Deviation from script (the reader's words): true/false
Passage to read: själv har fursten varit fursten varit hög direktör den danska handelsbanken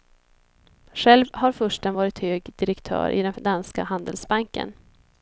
true